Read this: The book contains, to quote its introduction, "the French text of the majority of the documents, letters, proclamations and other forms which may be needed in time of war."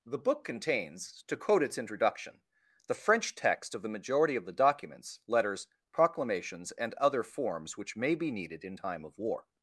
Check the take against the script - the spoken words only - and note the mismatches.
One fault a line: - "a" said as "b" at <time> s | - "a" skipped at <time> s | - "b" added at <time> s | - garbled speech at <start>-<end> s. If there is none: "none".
none